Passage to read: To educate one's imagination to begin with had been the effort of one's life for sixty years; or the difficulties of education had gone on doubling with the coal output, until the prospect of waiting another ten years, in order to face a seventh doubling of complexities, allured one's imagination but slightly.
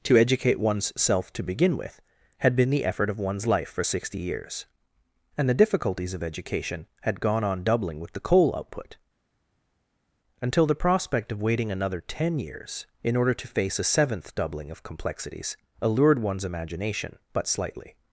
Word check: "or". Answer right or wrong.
wrong